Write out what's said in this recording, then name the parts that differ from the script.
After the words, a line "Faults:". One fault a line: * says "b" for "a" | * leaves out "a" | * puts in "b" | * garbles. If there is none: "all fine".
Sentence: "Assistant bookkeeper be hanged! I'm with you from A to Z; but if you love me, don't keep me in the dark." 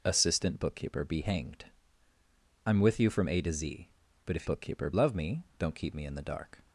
"Assistant bookkeeper be hanged! I'm with you from A to Z; but if bookkeeper love me, don't keep me in the dark."
Faults:
* says "bookkeeper" for "you"